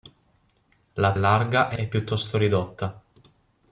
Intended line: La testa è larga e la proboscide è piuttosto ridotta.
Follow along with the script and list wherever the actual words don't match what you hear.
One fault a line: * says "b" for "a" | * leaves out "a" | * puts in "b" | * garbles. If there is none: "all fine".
* leaves out "testa"
* leaves out "la proboscide"